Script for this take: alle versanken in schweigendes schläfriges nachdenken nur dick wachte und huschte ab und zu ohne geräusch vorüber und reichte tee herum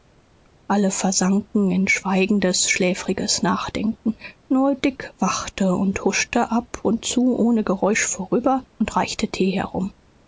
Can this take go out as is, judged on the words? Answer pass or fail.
pass